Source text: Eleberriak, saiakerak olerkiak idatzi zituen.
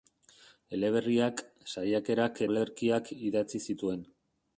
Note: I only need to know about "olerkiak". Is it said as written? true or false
true